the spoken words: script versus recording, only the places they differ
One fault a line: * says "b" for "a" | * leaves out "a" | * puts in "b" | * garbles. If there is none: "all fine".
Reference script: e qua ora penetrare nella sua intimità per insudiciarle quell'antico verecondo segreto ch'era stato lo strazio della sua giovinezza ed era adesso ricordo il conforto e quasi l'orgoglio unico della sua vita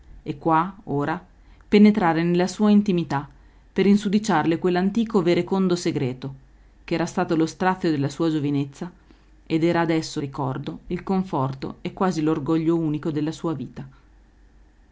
all fine